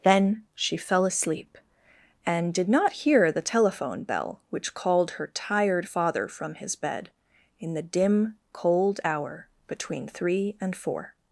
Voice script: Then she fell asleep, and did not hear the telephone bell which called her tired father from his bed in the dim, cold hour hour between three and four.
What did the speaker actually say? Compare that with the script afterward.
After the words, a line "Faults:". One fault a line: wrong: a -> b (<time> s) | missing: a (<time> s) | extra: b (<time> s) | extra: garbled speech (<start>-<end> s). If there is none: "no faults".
Then she fell asleep, and did not hear the telephone bell which called her tired father from his bed in the dim, cold hour between three and four.
Faults:
missing: hour (9.5 s)